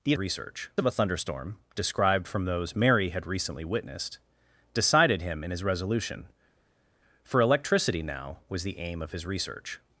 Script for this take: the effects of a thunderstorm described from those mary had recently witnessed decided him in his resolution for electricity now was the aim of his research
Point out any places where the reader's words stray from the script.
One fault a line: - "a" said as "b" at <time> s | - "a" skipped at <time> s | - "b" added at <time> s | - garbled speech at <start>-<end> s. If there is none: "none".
- "effects" said as "research" at 0.2 s